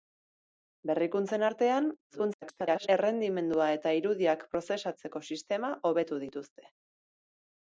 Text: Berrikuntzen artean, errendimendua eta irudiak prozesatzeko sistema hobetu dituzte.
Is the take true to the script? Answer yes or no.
no